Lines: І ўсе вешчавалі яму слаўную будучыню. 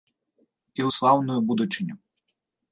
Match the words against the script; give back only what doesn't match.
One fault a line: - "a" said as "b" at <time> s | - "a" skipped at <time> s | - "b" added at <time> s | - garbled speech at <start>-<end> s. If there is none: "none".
- "ўсе вешчавалі яму" skipped at 0.9 s